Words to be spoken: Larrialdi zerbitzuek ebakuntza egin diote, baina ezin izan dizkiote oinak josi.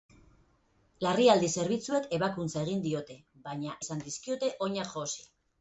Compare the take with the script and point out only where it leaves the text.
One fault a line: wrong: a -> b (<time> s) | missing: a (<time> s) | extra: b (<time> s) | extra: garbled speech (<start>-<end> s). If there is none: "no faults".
missing: ezin (3.8 s)